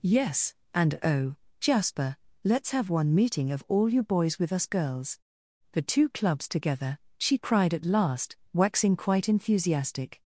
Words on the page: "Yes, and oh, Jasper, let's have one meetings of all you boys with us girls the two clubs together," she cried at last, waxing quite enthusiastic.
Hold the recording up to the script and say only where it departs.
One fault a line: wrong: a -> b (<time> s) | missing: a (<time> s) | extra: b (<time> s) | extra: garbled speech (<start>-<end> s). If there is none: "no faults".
wrong: meetings -> meeting (3.1 s)